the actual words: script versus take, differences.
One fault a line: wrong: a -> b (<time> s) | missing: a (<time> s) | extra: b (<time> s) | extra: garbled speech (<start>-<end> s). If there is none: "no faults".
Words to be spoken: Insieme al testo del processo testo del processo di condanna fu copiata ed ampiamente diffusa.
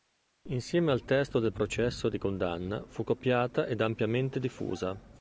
missing: testo del processo (2.1 s)